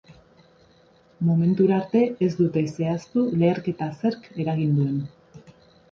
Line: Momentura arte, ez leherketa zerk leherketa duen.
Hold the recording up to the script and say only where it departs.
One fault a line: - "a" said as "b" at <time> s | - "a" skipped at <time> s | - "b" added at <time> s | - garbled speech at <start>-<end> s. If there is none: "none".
- "dute zehaztu" added at 2.4 s
- "leherketa" said as "eragin" at 4.4 s